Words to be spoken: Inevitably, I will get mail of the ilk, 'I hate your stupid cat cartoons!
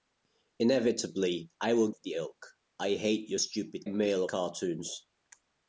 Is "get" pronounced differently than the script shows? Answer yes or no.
yes